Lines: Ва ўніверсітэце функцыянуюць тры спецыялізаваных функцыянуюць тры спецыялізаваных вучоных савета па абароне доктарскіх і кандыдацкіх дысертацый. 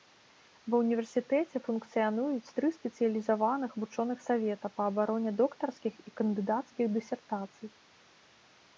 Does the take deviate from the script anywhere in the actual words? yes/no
yes